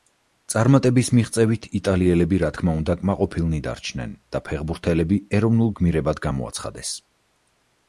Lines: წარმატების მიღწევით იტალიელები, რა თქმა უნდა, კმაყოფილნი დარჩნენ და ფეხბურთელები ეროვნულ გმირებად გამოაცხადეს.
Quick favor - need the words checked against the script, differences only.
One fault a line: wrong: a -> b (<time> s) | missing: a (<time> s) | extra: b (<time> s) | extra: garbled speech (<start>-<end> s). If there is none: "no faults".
no faults